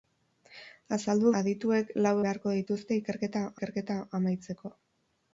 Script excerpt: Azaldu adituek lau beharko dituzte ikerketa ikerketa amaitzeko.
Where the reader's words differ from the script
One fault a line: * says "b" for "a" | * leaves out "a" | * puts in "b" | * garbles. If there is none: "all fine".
all fine